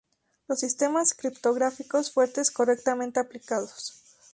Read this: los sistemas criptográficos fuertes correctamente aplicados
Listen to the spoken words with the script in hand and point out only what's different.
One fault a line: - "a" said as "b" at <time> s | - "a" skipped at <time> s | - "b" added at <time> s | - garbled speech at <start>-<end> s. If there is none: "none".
none